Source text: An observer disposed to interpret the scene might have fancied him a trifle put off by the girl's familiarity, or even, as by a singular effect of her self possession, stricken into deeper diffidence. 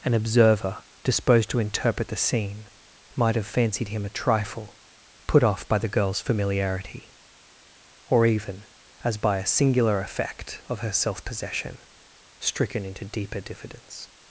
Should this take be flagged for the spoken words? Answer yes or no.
no